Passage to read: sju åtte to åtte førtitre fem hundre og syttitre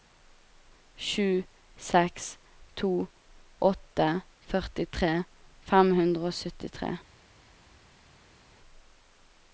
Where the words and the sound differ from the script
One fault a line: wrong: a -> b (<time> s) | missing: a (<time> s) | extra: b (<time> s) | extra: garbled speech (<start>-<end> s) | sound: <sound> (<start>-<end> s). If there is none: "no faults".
wrong: åtte -> seks (1.9 s)